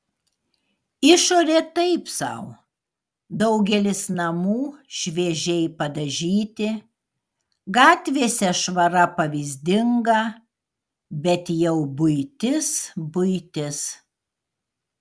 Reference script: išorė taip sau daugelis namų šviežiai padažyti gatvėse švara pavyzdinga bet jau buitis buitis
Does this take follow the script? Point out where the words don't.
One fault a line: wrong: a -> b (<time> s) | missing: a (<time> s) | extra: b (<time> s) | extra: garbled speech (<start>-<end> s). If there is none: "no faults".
no faults